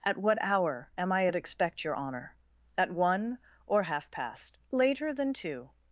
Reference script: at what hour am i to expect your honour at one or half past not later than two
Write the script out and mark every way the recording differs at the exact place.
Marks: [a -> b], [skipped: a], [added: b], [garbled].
at what hour am i [to -> at] expect your honour at one or half past [skipped: not] later than two